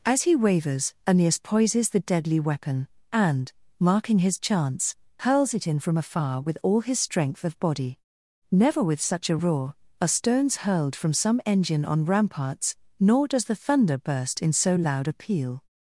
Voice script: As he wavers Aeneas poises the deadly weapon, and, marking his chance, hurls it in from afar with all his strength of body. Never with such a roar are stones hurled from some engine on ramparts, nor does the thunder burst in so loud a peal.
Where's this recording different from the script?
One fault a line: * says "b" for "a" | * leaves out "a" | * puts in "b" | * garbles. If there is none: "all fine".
all fine